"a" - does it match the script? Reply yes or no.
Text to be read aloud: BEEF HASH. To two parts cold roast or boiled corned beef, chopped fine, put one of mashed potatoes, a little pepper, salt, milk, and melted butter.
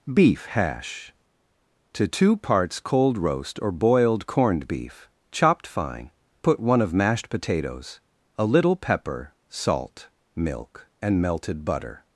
yes